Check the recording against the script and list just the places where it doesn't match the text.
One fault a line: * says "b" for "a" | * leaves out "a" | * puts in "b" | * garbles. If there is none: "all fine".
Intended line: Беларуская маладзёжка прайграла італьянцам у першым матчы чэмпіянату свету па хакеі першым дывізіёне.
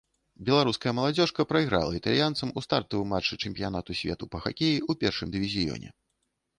* says "стартавым" for "першым"
* puts in "ў"